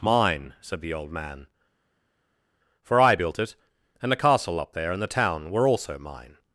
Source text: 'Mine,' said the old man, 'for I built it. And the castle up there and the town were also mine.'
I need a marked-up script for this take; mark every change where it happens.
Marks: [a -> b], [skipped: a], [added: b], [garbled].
'Mine,' said the old man, 'for I built it. And the castle up there and the town were also mine.'